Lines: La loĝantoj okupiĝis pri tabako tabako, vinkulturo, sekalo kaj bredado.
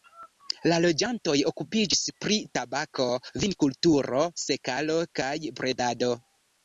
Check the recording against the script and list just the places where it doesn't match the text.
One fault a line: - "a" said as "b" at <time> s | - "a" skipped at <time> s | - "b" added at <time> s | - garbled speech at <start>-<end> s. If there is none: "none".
- "tabako" skipped at 3.1 s